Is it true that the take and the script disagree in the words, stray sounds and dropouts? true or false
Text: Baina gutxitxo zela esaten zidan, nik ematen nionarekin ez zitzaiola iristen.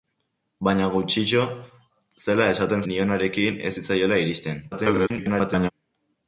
true